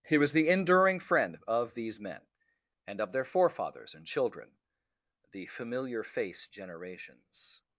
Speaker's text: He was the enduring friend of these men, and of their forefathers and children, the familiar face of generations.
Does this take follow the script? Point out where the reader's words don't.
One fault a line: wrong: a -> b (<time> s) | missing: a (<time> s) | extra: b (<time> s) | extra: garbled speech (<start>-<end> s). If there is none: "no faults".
missing: of (6.5 s)